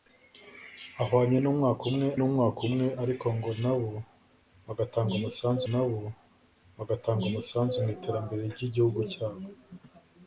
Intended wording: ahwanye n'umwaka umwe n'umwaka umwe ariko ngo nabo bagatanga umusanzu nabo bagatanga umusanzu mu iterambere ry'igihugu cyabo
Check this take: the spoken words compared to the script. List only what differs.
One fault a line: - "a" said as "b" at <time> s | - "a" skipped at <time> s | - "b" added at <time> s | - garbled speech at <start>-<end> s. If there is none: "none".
none